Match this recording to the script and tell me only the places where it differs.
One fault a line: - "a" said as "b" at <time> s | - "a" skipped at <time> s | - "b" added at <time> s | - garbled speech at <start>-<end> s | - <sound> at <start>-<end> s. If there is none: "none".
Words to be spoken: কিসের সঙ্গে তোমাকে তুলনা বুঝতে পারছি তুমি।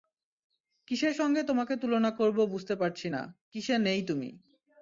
- "করব" added at 2.1 s
- "না কিসে নেই" added at 3.1 s